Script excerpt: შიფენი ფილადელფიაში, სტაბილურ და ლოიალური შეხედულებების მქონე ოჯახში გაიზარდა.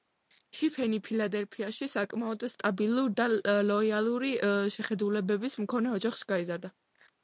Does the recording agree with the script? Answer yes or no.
no